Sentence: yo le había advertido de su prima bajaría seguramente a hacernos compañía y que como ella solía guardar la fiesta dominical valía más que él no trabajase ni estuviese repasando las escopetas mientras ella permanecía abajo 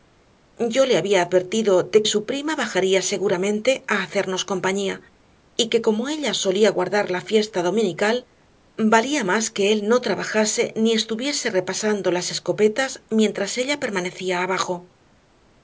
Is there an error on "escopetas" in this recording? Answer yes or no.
no